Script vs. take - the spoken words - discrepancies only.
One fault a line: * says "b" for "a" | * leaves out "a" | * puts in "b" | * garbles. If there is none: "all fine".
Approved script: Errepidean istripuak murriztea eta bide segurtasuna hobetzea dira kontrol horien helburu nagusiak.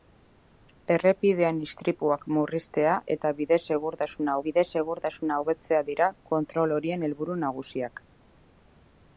* puts in "bide segurtasuna"